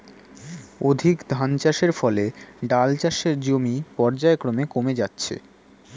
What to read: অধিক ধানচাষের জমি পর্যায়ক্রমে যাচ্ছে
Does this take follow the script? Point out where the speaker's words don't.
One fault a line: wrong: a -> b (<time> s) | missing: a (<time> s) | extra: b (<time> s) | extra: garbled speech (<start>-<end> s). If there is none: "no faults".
extra: ফলে ডাল চাষের (1.9 s)
extra: কমে (4.7 s)